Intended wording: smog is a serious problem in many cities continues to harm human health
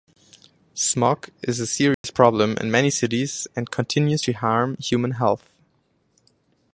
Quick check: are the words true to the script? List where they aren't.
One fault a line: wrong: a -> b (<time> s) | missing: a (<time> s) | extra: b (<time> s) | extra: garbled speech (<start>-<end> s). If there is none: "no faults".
extra: and (3.6 s)